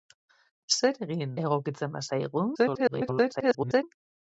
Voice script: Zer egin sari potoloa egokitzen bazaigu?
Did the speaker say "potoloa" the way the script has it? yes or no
no